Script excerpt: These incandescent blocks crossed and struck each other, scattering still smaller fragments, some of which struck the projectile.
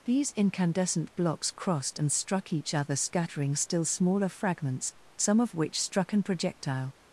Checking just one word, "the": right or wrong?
wrong